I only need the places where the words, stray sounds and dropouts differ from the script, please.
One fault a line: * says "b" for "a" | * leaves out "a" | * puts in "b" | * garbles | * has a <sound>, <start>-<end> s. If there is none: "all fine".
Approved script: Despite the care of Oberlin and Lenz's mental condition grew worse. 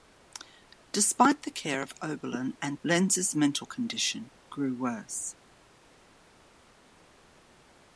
all fine